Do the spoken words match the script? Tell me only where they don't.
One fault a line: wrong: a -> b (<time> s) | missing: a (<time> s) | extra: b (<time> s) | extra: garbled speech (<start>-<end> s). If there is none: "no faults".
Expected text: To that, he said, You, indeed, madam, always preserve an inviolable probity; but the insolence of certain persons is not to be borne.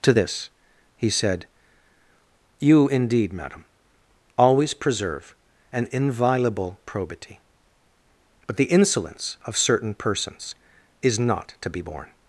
wrong: that -> this (0.1 s)